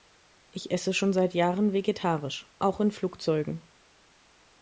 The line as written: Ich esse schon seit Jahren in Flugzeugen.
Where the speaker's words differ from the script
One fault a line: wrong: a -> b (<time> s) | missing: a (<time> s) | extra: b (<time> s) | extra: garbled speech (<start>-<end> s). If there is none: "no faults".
extra: vegetarisch auch (1.7 s)